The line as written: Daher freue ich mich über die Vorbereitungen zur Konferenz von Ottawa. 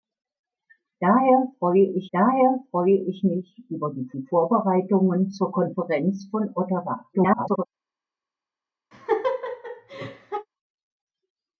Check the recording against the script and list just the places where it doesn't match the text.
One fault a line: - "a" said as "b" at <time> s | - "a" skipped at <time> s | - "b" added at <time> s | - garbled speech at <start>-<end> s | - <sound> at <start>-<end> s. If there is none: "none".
- "daher freue ich" added at 2.1 s
- "die" added at 4.1 s
- garbled speech at 7.1-7.7 s
- laugh at 8.9-10.5 s